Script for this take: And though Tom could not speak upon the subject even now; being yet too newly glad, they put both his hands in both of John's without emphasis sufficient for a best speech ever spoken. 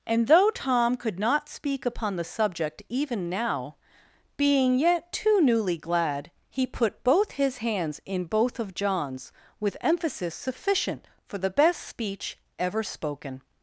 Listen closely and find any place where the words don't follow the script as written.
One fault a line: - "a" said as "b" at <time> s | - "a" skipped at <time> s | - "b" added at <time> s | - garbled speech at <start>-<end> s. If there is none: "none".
- "they" said as "he" at 6.5 s
- "without" said as "with" at 9.6 s
- "a" said as "the" at 11.4 s